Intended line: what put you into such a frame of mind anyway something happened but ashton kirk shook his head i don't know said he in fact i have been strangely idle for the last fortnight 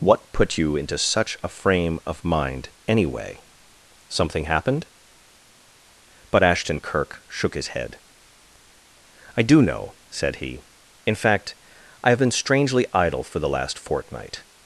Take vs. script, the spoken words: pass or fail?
fail